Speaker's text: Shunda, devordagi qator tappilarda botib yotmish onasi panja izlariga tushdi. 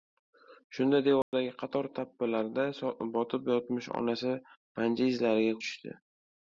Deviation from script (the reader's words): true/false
false